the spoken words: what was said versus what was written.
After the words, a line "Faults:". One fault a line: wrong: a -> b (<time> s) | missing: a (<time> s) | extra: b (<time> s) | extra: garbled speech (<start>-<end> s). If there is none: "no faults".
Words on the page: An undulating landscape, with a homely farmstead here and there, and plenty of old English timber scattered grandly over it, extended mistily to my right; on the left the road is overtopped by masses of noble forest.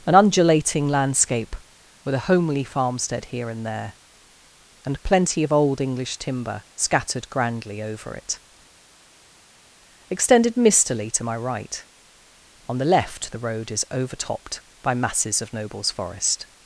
An undulating landscape, with a homely farmstead here and there, and plenty of old English timber scattered grandly over it, extended mistily to my right; on the left the road is overtopped by masses of nobles forest.
Faults:
wrong: noble -> nobles (15.5 s)